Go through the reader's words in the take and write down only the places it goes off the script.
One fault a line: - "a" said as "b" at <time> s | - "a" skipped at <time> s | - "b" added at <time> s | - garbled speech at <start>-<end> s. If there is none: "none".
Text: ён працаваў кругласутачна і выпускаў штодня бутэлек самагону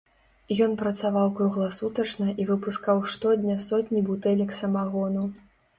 - "сотні" added at 3.7 s